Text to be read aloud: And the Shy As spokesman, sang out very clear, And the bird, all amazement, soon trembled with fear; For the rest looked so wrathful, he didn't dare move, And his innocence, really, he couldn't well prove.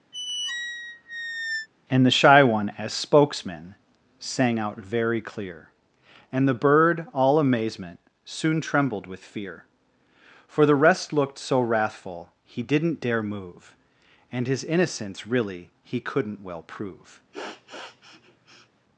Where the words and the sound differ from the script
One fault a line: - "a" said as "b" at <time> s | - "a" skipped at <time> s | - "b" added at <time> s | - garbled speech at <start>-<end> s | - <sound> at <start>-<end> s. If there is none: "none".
- squeak at 0.1-1.7 s
- "One" added at 2.4 s
- sniff at 17.3-18.7 s